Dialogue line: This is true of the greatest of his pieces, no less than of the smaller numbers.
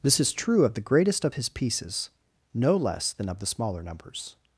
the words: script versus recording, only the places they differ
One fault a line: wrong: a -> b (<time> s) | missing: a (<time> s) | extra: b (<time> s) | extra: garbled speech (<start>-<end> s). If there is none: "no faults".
no faults